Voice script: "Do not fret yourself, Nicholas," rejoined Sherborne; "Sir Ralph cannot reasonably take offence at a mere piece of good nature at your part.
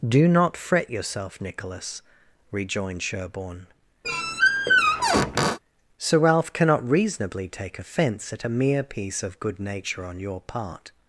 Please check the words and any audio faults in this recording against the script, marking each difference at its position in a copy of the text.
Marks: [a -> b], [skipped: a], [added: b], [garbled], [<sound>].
"Do not fret yourself, Nicholas," rejoined Sherborne; [squeak] "Sir Ralph cannot reasonably take offence at a mere piece of good nature [at -> on] your part.